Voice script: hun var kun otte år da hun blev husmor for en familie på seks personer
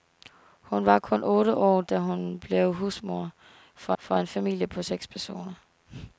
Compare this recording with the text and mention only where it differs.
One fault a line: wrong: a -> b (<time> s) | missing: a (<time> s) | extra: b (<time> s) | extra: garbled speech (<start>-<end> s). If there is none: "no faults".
extra: for (4.0 s)